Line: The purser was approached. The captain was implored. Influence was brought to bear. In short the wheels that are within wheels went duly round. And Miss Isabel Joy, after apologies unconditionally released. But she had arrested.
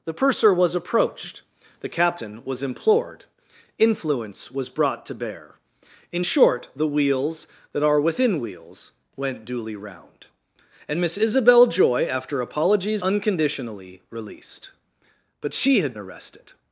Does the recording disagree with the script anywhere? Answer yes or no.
no